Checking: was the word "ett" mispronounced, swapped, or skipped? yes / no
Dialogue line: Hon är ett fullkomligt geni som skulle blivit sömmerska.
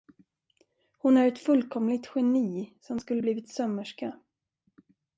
no